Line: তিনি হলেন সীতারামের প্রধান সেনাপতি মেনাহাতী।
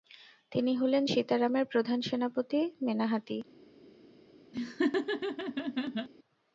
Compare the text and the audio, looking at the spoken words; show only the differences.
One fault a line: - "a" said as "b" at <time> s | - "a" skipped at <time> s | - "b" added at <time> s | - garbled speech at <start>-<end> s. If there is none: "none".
none